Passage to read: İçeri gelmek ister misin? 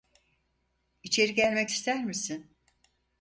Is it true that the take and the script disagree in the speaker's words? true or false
false